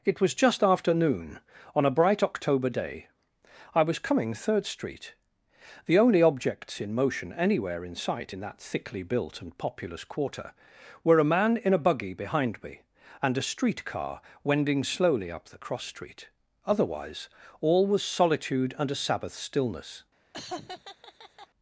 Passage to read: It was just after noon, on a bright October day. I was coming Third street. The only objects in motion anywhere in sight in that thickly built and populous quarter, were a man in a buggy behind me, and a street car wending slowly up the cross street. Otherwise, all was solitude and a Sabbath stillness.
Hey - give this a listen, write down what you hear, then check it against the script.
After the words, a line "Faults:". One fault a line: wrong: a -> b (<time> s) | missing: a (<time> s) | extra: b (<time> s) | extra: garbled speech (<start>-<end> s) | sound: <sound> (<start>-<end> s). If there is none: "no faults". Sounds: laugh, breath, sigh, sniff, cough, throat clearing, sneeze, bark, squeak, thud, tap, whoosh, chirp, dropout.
It was just after noon, on a bright October day. I was coming Third street. The only objects in motion anywhere in sight in that thickly built and populous quarter, were a man in a buggy behind me, and a street car wending slowly up the cross street. Otherwise, all was solitude and a Sabbath stillness.
Faults:
sound: laugh (20.3-21.5 s)